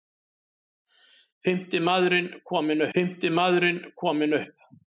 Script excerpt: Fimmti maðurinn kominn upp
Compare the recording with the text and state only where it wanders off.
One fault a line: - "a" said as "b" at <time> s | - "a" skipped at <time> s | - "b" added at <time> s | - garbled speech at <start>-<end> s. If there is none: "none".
- "fimmti maðurinn kominn" added at 3.0 s